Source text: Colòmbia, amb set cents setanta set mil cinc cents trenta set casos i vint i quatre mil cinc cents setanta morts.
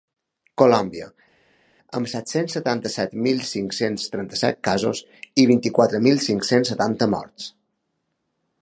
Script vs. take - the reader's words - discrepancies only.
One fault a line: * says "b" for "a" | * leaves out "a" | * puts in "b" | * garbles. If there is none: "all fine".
all fine